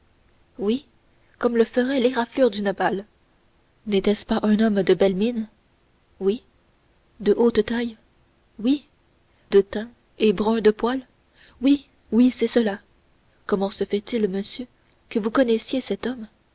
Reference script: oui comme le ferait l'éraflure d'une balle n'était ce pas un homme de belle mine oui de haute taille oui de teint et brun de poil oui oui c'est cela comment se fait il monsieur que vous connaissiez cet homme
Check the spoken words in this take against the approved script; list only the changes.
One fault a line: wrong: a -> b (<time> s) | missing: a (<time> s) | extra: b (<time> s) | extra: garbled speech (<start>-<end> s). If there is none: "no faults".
no faults